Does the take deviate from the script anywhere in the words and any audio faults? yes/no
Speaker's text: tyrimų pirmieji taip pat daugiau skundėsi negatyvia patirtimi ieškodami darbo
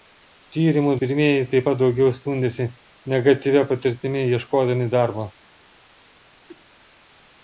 yes